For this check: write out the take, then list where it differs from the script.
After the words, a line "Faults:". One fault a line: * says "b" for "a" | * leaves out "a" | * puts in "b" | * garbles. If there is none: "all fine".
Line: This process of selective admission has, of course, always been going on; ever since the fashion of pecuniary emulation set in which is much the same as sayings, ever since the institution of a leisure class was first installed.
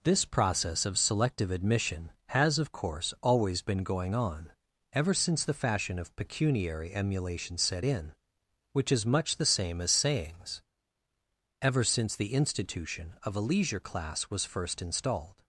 This process of selective admission has, of course, always been going on; ever since the fashion of pecuniary emulation set in which is much the same as sayings, ever since the institution of a leisure class was first installed.
Faults:
all fine